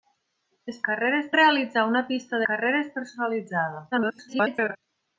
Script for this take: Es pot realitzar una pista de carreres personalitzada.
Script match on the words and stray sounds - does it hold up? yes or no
no